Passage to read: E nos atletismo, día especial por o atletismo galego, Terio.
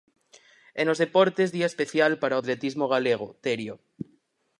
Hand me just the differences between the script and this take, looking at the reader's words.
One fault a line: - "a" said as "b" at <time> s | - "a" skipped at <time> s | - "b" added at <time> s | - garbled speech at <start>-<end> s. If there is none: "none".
- "atletismo" said as "deportes" at 1.0 s
- "por" said as "para" at 2.2 s